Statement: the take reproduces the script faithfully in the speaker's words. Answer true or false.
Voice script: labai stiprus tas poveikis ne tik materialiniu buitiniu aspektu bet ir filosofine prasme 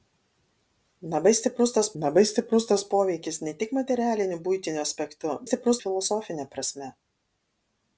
false